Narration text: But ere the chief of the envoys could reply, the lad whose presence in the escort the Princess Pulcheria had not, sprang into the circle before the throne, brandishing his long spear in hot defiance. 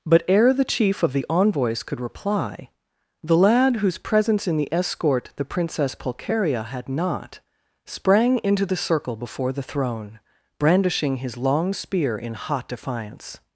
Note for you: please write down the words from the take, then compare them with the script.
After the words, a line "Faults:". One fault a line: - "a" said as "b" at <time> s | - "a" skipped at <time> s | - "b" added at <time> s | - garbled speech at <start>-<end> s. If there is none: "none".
But ere the chief of the envoys could reply, the lad whose presence in the escort the Princess Pulcheria had not, sprang into the circle before the throne, brandishing his long spear in hot defiance.
Faults:
none